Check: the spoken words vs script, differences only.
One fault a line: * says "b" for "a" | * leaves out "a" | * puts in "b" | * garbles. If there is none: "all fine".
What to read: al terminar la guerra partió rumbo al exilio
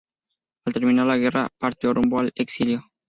all fine